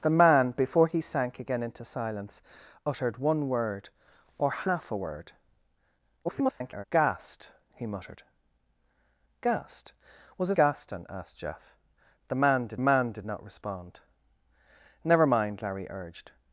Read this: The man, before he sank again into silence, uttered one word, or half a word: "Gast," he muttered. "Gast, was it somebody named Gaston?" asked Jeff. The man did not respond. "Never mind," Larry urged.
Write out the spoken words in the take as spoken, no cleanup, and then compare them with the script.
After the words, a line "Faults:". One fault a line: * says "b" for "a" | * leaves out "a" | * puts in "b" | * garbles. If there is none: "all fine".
The man, before he sank again into silence, uttered one word, or half a word: [garbled] "Gast," he muttered. "Gast, was it Gaston?" asked Jeff. The man did man did not respond. "Never mind," Larry urged.
Faults:
* garbles
* leaves out "somebody named"
* puts in "man did"